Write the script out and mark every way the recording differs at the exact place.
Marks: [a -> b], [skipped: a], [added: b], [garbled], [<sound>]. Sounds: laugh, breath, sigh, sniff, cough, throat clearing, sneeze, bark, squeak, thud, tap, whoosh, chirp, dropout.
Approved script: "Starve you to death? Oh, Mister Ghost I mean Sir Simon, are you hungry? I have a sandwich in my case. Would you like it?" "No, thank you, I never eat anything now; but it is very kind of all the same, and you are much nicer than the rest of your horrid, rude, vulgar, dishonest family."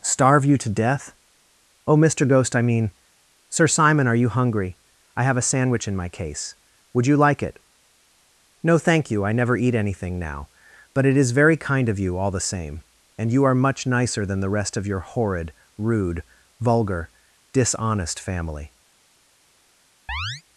"Starve you to death? Oh, Mister Ghost I mean Sir Simon, are you hungry? I have a sandwich in my case. Would you like it?" "No, thank you, I never eat anything now; but it is very kind of [added: you] all the same, and you are much nicer than the rest of your horrid, rude, vulgar, dishonest family." [chirp]